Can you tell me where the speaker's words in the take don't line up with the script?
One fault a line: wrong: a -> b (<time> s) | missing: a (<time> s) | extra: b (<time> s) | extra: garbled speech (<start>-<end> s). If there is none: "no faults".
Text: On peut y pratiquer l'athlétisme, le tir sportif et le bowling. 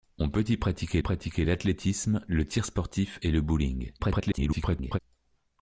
extra: pratiquer (1.0 s)
extra: garbled speech (4.0-5.0 s)